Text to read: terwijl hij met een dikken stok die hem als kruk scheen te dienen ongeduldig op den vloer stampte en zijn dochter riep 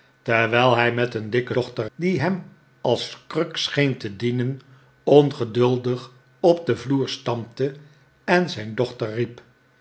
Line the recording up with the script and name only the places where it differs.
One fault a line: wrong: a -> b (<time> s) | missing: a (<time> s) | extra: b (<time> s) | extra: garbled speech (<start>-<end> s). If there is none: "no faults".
wrong: stok -> dochter (1.5 s)